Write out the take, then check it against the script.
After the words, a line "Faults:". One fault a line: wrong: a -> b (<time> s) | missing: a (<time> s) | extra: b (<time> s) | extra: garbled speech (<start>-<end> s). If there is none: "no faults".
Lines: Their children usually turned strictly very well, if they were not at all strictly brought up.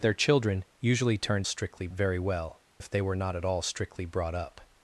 Their children usually turned strictly very well, if they were not at all strictly brought up.
Faults:
no faults